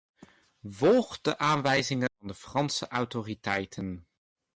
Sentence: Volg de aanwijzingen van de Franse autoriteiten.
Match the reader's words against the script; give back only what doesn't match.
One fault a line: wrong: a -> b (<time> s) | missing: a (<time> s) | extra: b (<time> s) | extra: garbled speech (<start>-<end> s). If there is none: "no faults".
no faults